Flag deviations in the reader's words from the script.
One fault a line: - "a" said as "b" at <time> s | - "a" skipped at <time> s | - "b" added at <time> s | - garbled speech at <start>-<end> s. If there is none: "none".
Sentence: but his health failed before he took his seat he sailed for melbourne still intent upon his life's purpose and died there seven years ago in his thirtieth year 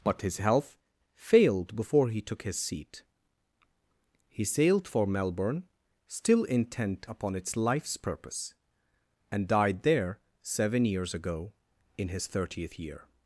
- "his" said as "its" at 7.3 s